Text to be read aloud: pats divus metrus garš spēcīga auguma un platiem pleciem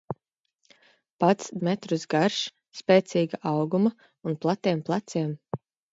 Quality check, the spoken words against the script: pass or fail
fail